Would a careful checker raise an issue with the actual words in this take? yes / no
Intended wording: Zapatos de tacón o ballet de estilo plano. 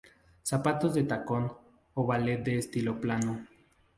no